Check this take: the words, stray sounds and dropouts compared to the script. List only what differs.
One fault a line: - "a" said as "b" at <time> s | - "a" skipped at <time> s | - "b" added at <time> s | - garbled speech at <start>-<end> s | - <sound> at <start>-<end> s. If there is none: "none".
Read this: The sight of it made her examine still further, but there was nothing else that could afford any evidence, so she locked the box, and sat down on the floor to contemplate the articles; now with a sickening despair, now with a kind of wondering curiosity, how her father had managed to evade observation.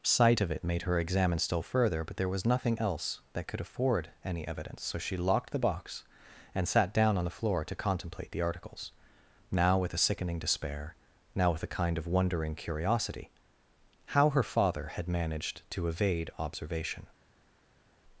- "The" skipped at 0.1 s